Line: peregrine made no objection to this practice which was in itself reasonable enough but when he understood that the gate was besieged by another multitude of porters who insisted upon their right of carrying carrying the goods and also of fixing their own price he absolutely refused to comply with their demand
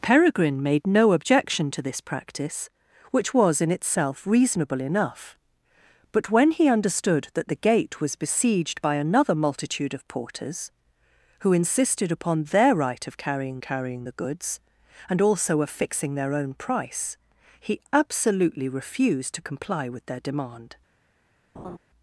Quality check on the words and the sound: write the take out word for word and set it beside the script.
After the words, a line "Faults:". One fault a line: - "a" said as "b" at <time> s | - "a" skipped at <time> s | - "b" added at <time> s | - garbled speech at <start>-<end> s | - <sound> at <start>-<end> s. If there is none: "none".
peregrine made no objection to this practice which was in itself reasonable enough but when he understood that the gate was besieged by another multitude of porters who insisted upon their right of carrying carrying the goods and also of fixing their own price he absolutely refused to comply with their demand
Faults:
- laugh at 21.5-21.8 s